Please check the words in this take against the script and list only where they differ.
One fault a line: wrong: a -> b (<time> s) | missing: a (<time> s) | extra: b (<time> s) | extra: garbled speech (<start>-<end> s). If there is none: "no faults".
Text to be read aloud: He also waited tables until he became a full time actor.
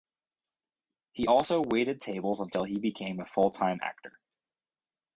no faults